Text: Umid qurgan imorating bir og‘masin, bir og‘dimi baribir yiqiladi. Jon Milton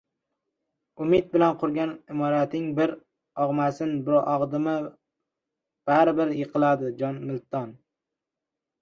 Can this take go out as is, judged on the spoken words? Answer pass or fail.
fail